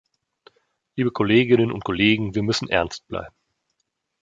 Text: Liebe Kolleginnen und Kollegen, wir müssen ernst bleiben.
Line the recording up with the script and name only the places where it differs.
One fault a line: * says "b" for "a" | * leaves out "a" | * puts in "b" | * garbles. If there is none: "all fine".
all fine